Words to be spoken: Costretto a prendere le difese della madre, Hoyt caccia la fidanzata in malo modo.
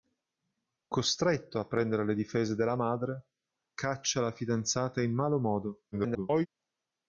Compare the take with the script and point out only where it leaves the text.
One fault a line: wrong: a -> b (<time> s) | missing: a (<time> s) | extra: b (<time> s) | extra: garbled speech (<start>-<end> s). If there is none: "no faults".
missing: Hoyt (3.3 s)
extra: garbled speech (5.9-6.5 s)